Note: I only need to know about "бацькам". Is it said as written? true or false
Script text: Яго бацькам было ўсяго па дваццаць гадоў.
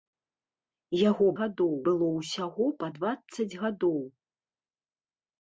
false